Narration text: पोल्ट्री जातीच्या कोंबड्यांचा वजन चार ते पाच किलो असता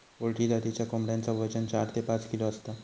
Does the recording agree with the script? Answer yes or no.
yes